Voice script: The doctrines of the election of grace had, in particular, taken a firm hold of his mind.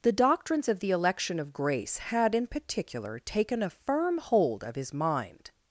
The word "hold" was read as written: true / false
true